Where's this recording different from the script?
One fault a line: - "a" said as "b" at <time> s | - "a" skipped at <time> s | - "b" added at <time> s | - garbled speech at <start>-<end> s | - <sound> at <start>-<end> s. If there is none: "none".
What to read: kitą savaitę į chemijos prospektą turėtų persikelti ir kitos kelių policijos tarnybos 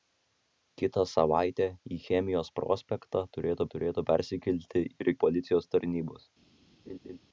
- "turėtų" added at 3.7 s
- "kitos kelių" skipped at 5.1 s
- laugh at 6.9-7.2 s